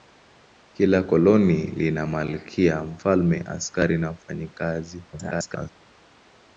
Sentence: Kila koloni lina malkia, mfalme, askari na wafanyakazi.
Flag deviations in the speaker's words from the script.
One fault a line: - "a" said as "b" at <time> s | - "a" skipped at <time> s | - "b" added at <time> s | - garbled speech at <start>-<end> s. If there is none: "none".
- garbled speech at 5.1-5.7 s